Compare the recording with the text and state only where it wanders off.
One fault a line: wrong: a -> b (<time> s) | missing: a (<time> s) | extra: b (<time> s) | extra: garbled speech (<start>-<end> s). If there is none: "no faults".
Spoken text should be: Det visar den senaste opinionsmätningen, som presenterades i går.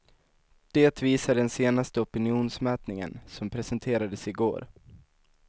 no faults